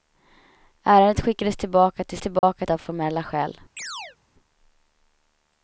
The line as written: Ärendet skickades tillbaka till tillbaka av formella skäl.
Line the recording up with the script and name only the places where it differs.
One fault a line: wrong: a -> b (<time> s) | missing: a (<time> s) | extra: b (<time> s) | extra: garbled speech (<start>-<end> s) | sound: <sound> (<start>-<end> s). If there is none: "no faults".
sound: dropout (2.4-2.4 s)
sound: chirp (3.8-4.2 s)